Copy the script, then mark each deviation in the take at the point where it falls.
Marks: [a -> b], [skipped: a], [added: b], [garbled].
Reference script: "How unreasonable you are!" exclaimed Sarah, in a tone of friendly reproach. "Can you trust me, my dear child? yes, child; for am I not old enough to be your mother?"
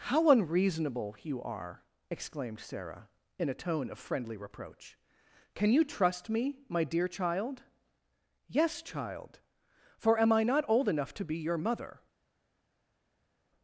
"How unreasonable you are!" exclaimed Sarah, in a tone of friendly reproach. "Can you trust me, my dear child? yes, child; for am I not old enough to be your mother?"